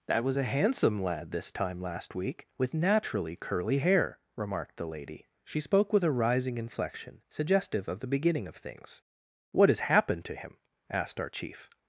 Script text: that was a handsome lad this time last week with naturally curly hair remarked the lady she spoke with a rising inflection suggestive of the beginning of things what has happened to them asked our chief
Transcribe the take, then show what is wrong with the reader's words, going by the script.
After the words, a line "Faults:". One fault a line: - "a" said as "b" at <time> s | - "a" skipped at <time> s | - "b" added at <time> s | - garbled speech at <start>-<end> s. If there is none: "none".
that was a handsome lad this time last week with naturally curly hair remarked the lady she spoke with a rising inflection suggestive of the beginning of things what has happened to him asked our chief
Faults:
- "them" said as "him" at 10.4 s